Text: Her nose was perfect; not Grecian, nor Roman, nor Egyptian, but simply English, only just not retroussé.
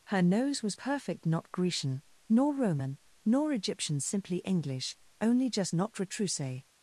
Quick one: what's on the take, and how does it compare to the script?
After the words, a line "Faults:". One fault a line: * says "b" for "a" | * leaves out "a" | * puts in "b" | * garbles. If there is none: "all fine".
Her nose was perfect; not Grecian, nor Roman, nor Egyptian, simply English, only just not retroussé.
Faults:
* leaves out "but"